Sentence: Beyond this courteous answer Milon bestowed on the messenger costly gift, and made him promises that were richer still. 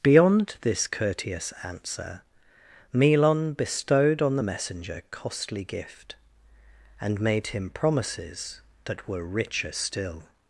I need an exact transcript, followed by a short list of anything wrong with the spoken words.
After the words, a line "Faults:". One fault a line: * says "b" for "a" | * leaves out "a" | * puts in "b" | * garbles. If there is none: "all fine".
Beyond this courteous answer Milon bestowed on the messenger costly gift, and made him promises that were richer still.
Faults:
all fine